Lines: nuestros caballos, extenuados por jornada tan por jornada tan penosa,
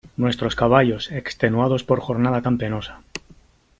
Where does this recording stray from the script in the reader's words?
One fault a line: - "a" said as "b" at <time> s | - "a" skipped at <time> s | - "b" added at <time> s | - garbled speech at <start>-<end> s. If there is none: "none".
- "por jornada tan" skipped at 2.6 s